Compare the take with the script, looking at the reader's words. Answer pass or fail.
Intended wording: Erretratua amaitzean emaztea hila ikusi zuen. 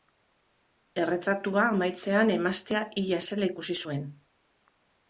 fail